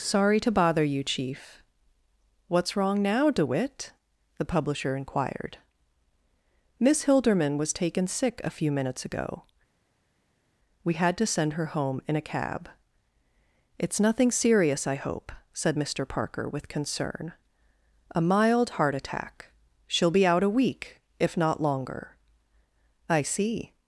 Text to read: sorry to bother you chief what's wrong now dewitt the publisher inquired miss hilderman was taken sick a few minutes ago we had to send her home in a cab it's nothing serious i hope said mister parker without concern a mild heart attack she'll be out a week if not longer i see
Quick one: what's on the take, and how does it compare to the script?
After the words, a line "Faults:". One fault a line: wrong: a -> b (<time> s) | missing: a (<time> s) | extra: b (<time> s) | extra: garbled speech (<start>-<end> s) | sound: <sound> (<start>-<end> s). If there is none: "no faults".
sorry to bother you chief what's wrong now dewitt the publisher inquired miss hilderman was taken sick a few minutes ago we had to send her home in a cab it's nothing serious i hope said mister parker with concern a mild heart attack she'll be out a week if not longer i see
Faults:
wrong: without -> with (16.5 s)